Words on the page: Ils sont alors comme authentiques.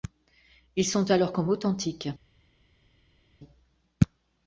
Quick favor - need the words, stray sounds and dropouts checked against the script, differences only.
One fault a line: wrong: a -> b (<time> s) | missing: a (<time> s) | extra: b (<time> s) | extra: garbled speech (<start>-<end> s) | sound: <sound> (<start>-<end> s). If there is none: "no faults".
no faults